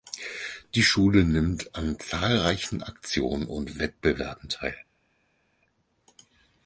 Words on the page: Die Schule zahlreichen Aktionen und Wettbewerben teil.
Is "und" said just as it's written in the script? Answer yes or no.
yes